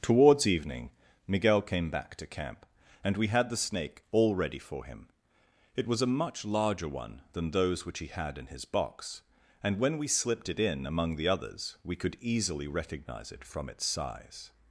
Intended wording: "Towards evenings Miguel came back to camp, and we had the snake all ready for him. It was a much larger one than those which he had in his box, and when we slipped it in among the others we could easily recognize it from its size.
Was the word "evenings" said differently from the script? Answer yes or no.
yes